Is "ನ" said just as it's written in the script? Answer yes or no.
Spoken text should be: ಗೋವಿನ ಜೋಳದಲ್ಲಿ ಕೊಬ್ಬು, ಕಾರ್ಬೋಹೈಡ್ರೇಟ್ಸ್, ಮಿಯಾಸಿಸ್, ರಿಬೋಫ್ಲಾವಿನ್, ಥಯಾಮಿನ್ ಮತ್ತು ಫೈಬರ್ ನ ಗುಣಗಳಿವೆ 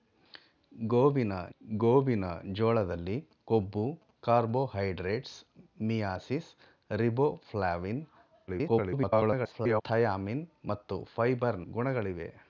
no